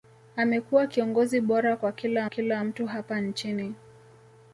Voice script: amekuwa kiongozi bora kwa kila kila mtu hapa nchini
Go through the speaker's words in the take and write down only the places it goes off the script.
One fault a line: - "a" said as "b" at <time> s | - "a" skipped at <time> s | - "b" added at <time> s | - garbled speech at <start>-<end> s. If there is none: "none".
none